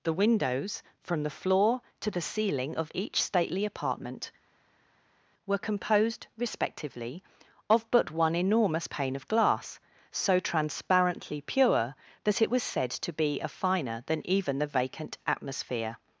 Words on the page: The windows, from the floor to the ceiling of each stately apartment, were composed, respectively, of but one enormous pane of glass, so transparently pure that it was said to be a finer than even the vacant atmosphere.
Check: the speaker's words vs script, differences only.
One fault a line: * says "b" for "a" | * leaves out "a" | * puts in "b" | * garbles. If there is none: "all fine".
all fine